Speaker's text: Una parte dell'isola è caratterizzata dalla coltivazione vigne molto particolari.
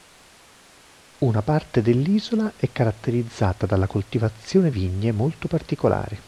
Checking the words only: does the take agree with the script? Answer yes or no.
yes